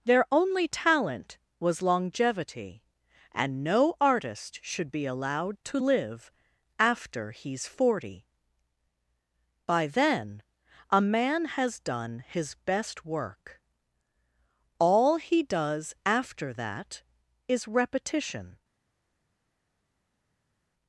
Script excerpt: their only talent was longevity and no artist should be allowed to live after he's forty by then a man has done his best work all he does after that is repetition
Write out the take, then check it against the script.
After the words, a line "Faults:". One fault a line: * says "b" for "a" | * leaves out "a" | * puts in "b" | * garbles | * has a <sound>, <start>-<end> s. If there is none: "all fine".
their only talent was longevity and no artist should be allowed to live after he's forty by then a man has done his best work all he does after that is repetition
Faults:
all fine